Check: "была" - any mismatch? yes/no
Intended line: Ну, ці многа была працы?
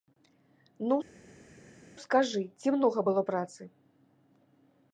yes